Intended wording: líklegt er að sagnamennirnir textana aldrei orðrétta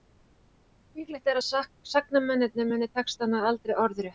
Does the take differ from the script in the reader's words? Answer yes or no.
yes